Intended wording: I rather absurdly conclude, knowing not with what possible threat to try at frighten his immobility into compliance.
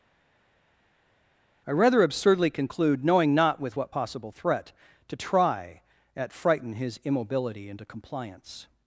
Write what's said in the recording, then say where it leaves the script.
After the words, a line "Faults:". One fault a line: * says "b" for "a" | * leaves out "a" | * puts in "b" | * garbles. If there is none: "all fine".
I rather absurdly conclude, knowing not with what possible threat to try at frighten his immobility into compliance.
Faults:
all fine